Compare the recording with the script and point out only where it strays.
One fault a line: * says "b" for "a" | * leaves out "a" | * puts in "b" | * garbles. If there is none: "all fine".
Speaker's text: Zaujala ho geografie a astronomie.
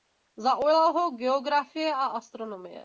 all fine